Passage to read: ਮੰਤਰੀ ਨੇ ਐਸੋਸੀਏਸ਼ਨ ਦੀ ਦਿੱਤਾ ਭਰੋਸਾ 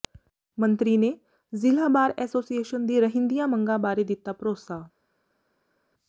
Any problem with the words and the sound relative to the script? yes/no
yes